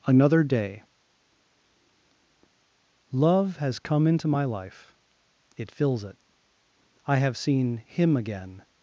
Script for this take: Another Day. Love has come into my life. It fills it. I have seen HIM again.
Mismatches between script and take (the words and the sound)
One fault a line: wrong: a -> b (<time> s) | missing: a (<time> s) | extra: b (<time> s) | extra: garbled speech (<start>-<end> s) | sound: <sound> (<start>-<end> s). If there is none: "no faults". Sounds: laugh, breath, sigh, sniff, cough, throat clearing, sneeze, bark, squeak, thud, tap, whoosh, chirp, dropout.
no faults